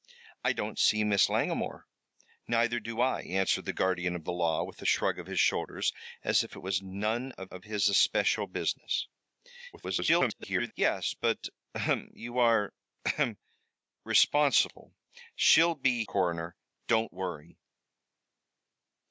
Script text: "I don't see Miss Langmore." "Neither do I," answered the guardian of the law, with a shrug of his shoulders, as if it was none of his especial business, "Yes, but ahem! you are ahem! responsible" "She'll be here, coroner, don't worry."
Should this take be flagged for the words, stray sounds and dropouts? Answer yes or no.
yes